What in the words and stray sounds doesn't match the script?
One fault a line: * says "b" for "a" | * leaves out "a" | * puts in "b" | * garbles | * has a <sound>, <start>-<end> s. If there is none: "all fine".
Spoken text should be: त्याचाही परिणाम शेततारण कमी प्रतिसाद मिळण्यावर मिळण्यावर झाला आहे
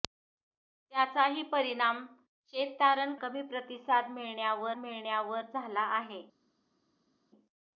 all fine